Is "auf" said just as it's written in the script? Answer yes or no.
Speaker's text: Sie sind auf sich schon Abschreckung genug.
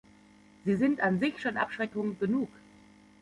no